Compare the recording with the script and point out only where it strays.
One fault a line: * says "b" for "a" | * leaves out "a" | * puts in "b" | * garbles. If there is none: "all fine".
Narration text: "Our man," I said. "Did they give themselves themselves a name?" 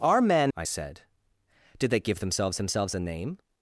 all fine